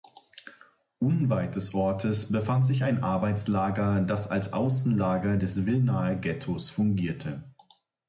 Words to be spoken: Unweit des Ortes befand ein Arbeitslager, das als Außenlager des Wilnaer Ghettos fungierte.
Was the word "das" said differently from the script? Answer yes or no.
no